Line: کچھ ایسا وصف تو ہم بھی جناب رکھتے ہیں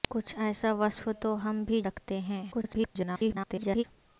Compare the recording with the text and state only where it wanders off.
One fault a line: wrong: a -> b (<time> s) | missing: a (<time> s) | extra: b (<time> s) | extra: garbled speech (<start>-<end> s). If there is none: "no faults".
missing: جناب (1.8 s)
extra: garbled speech (2.5-3.8 s)